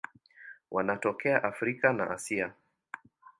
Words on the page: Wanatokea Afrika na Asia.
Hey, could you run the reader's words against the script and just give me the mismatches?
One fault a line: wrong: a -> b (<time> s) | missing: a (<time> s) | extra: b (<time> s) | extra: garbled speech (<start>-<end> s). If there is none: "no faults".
no faults